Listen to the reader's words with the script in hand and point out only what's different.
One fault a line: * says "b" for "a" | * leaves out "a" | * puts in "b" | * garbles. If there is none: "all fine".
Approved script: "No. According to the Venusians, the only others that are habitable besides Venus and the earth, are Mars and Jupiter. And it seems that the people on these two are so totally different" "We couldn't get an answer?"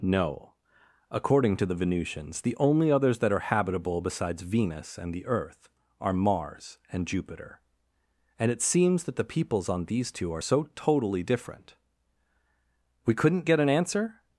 * says "peoples" for "people"